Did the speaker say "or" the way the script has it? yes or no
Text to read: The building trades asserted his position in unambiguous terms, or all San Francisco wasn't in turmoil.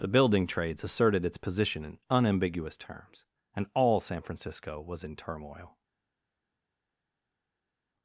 no